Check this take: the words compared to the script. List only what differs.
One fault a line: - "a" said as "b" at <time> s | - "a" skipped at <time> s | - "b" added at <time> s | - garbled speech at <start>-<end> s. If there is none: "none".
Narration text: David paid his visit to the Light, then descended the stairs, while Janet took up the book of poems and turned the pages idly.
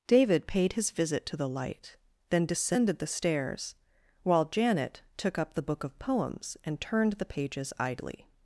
none